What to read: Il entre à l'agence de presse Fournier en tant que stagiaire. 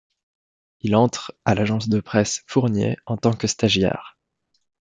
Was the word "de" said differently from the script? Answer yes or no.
no